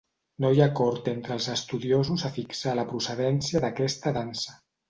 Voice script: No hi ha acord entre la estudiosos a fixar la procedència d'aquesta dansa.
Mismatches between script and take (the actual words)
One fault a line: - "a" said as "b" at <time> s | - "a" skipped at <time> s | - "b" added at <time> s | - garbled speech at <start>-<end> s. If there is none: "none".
- "la" said as "els" at 1.4 s